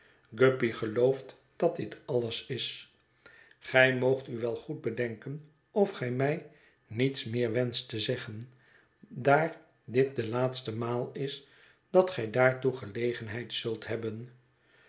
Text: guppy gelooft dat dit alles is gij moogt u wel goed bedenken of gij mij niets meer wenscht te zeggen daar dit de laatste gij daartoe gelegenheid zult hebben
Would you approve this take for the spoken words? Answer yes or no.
no